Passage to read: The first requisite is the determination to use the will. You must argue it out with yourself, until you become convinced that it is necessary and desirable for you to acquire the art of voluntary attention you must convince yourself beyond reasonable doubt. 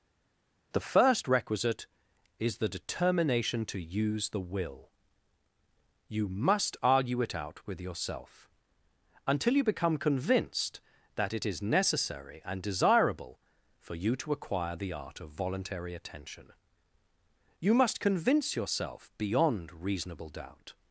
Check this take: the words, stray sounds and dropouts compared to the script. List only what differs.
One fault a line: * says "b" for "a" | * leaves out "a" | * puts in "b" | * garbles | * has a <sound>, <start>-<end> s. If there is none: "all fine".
all fine